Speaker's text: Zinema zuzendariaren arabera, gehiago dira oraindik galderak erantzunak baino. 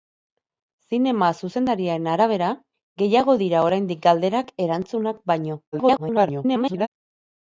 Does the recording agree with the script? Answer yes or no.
no